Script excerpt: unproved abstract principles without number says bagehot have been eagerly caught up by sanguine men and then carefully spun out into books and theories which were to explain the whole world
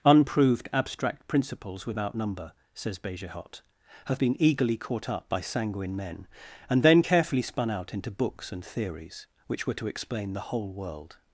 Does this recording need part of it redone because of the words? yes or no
no